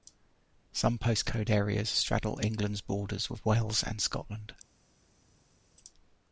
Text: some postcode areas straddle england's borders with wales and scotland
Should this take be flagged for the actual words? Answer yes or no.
no